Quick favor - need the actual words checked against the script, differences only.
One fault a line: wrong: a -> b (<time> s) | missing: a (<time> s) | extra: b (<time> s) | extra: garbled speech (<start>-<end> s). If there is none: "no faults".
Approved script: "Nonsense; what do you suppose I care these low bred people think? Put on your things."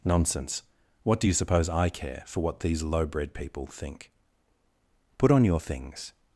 extra: for what (2.3 s)